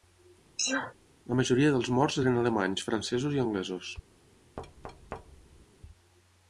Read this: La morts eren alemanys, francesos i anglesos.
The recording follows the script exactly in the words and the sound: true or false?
false